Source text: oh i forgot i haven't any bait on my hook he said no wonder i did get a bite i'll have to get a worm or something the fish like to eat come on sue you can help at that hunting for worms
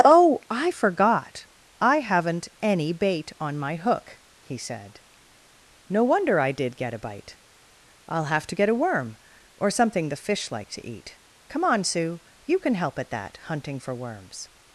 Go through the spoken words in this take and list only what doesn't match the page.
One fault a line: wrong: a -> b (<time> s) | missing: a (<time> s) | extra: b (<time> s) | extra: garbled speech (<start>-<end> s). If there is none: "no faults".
no faults